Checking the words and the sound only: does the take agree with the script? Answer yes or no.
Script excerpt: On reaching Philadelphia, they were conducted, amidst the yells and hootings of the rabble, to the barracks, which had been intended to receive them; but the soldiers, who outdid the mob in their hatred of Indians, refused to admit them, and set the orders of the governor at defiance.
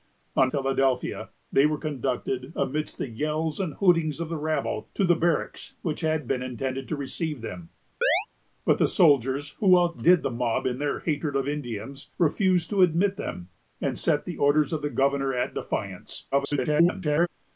no